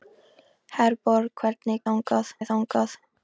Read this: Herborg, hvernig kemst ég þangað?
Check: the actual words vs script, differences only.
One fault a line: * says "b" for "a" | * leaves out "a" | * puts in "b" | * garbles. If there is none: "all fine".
* says "þangað" for "kemst"